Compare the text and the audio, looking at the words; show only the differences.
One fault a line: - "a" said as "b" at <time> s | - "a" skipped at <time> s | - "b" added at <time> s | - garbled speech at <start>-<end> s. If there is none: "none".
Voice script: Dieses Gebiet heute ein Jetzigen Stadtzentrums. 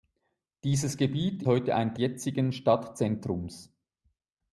none